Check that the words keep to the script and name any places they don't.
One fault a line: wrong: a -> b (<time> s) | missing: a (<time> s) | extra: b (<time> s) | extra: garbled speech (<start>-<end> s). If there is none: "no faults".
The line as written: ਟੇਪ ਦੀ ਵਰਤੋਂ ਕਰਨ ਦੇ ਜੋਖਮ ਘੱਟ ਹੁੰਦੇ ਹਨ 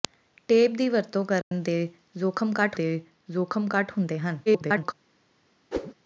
extra: ਦੇ ਜੋਖਮ ਘੱਟ (2.7 s)
extra: garbled speech (4.5-4.9 s)